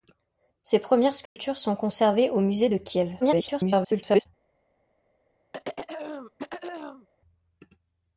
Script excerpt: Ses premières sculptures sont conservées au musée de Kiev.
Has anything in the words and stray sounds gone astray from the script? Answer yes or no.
yes